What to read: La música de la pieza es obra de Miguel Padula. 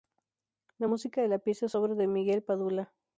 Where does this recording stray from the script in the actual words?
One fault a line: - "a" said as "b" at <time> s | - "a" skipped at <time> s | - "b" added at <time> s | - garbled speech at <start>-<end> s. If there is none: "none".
none